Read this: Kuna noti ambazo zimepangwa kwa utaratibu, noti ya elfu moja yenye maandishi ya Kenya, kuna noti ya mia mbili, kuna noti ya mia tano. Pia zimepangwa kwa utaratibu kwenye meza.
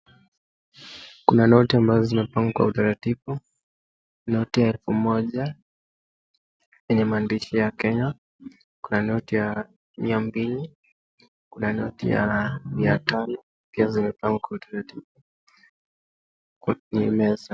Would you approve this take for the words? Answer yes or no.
yes